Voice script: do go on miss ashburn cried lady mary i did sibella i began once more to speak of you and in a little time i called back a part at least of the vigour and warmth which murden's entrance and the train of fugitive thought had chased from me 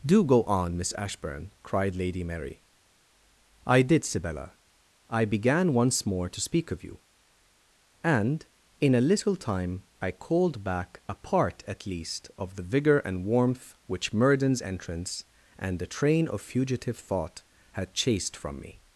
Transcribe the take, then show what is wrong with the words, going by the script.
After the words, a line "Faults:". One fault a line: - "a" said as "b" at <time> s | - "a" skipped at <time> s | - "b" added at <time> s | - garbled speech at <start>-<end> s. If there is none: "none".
do go on miss ashburn cried lady mary i did sibella i began once more to speak of you and in a little time i called back a part at least of the vigour and warmth which murden's entrance and the train of fugitive thought had chased from me
Faults:
none